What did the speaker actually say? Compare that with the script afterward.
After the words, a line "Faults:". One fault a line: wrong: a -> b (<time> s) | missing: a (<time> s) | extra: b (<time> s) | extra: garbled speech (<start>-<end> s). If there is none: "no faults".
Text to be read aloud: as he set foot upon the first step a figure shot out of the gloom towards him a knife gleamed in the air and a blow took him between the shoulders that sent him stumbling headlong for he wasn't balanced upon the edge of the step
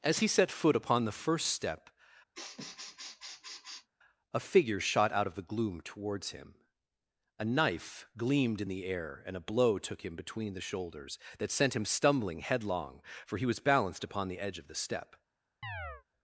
as he set foot upon the first step a figure shot out of the gloom towards him a knife gleamed in the air and a blow took him between the shoulders that sent him stumbling headlong for he was balanced upon the edge of the step
Faults:
wrong: wasn't -> was (13.4 s)